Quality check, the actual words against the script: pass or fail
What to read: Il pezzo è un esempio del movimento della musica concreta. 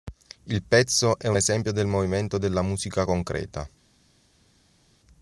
pass